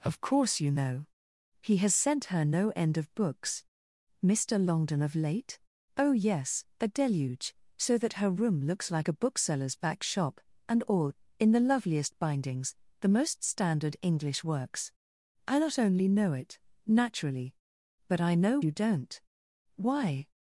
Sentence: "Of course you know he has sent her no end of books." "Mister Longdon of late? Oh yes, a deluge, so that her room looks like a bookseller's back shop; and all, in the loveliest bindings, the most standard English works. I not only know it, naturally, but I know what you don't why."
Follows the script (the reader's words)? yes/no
no